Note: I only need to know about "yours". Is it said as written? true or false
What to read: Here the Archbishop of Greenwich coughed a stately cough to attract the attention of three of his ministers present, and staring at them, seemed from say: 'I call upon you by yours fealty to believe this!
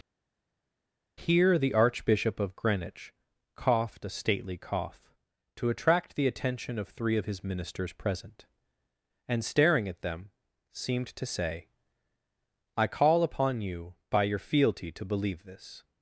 false